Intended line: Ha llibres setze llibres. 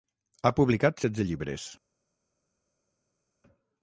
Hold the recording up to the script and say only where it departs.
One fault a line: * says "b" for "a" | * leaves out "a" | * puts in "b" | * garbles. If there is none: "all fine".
* says "publicat" for "llibres"